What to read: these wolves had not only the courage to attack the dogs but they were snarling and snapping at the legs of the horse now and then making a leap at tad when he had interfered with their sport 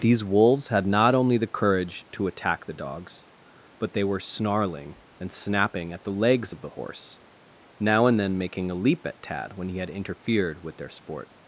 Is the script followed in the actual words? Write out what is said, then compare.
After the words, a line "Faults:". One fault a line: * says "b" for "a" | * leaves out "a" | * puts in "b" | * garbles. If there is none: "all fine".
these wolves had not only the courage to attack the dogs but they were snarling and snapping at the legs of the horse now and then making a leap at tad when he had interfered with their sport
Faults:
all fine